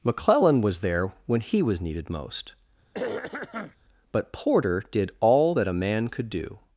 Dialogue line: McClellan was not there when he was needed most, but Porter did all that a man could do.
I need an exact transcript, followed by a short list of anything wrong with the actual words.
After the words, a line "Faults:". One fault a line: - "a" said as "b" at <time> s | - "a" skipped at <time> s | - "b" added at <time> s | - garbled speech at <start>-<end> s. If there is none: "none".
McClellan was there when he was needed most, but Porter did all that a man could do.
Faults:
- "not" skipped at 0.8 s